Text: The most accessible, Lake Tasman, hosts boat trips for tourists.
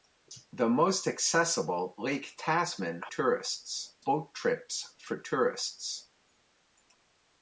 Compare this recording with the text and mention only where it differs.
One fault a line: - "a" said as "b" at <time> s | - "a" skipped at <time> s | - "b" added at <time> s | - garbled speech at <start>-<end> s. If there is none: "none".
- "hosts" said as "tourists" at 3.1 s